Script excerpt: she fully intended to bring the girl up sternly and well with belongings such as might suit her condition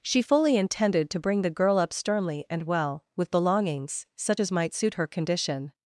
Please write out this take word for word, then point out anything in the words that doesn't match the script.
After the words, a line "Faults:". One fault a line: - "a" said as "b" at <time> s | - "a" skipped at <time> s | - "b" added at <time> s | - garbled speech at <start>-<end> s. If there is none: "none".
she fully intended to bring the girl up sternly and well with belongings such as might suit her condition
Faults:
none